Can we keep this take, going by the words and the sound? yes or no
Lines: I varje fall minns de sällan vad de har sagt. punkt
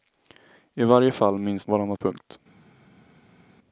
no